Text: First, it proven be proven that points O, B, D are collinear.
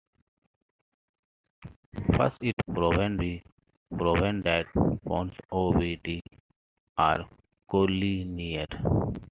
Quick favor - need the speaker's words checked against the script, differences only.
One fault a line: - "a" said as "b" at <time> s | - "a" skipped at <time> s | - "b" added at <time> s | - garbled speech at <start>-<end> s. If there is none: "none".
none